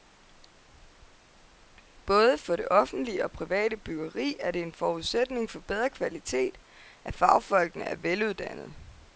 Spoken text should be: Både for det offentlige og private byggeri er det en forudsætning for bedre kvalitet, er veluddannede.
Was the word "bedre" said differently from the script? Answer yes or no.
no